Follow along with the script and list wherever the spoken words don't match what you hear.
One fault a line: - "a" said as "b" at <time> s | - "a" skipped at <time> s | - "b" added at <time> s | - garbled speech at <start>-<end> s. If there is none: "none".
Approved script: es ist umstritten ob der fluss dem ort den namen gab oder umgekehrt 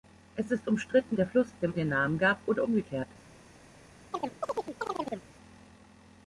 - "ob" skipped at 1.2 s
- "ort" skipped at 1.7 s